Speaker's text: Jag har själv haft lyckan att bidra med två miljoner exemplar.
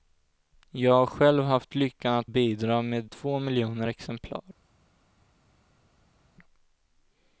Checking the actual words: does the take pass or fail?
pass